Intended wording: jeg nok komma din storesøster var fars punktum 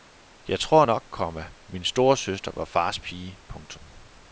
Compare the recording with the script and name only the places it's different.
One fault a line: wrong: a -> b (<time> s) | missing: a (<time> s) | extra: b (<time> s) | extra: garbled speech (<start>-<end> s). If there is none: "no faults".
extra: tror (0.6 s)
wrong: din -> min (1.7 s)
extra: pige (3.0 s)